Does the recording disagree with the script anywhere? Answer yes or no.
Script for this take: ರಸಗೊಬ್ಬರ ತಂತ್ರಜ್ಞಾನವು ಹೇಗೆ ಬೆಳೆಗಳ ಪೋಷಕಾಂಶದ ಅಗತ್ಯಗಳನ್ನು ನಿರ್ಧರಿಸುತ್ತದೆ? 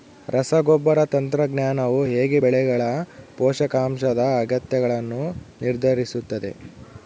no